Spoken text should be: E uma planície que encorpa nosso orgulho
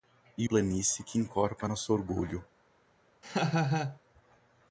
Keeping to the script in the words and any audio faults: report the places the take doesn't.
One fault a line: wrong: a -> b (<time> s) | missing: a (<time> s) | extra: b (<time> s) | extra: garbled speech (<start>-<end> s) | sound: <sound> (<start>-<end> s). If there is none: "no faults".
missing: uma (0.5 s)
sound: laugh (3.2-4.0 s)